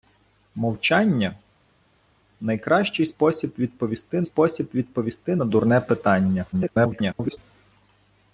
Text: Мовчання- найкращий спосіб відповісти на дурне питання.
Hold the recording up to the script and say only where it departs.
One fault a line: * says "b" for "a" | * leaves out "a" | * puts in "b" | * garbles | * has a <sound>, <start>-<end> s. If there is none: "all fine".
* puts in "спосіб відповісти"
* garbles